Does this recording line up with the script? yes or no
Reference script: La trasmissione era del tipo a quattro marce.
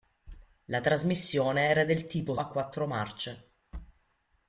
yes